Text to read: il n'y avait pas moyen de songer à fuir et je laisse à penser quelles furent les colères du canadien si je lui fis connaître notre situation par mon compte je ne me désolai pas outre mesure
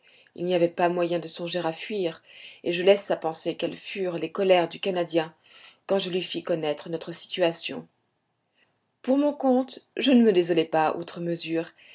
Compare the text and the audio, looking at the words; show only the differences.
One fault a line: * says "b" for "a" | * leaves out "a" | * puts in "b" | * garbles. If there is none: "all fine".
* says "quand" for "si"
* says "pour" for "par"